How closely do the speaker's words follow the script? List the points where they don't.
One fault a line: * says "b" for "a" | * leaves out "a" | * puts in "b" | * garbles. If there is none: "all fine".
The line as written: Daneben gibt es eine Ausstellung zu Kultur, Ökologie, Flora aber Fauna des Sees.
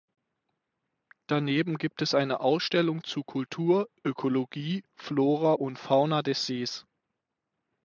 * says "und" for "aber"